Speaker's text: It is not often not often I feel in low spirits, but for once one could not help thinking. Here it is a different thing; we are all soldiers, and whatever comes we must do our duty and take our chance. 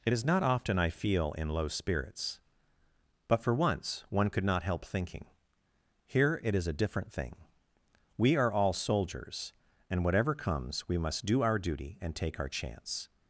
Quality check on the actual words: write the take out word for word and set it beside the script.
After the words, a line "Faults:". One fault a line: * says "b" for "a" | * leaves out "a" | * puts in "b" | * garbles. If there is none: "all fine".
It is not often I feel in low spirits, but for once one could not help thinking. Here it is a different thing; we are all soldiers, and whatever comes we must do our duty and take our chance.
Faults:
* leaves out "not often"